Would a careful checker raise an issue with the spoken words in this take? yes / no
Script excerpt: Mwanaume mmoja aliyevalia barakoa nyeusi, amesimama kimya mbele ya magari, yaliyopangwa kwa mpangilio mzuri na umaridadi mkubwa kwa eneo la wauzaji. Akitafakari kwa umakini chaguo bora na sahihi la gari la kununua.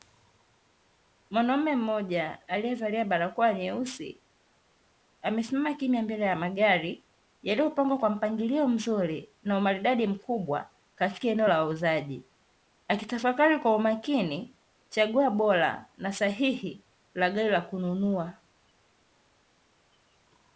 yes